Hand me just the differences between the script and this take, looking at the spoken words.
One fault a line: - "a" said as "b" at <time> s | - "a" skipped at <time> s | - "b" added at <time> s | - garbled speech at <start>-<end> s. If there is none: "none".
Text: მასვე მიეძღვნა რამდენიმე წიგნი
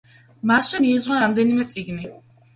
none